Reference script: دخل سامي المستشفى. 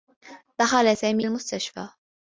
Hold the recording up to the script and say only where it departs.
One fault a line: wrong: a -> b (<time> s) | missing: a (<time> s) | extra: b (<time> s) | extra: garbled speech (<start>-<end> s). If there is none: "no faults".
no faults